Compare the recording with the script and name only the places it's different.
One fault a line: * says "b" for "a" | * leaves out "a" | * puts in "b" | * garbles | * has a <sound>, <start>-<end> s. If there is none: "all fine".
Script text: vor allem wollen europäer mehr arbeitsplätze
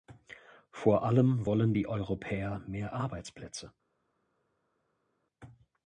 * puts in "die"